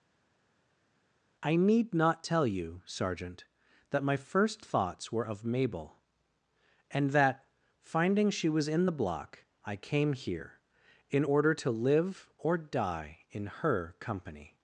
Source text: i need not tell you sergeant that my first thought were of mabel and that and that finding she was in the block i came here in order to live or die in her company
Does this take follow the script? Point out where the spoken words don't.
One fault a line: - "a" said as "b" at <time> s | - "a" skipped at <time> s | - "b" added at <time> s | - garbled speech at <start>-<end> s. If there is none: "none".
- "thought" said as "thoughts" at 4.6 s
- "and that" skipped at 7.4 s